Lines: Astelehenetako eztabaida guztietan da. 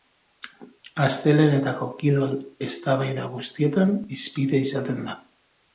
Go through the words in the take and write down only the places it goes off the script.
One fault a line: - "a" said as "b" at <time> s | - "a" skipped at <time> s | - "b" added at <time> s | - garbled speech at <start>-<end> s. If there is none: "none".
- "kirol" added at 2.0 s
- "hizpide izaten" added at 4.2 s